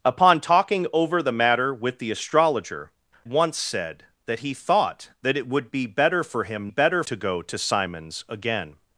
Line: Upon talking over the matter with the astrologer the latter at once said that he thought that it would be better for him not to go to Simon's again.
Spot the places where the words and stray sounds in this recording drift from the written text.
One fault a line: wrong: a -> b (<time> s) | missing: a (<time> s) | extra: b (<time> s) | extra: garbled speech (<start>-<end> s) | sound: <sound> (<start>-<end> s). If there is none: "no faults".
missing: the latter at (2.9 s)
wrong: not -> better (6.7 s)